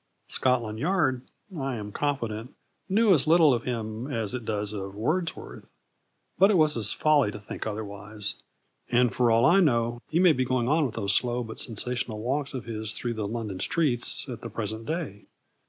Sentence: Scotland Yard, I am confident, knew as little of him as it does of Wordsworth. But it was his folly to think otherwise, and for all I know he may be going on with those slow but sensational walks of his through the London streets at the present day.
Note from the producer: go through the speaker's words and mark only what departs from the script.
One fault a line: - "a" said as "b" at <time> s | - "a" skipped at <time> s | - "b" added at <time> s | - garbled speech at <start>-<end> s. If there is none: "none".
none